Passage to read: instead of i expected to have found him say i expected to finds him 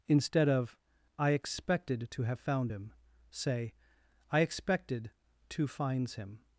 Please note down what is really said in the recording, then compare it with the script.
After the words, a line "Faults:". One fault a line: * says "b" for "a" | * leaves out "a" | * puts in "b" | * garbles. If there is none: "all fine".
instead of i expected to have found him say i expected to finds him
Faults:
all fine